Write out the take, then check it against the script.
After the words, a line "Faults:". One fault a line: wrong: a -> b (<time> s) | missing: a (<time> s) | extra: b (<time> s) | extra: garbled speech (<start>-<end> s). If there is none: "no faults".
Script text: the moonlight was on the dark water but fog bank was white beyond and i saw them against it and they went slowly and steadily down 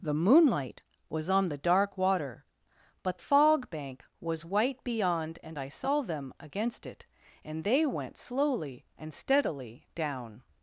the moonlight was on the dark water but fog bank was white beyond and i saw them against it and they went slowly and steadily down
Faults:
no faults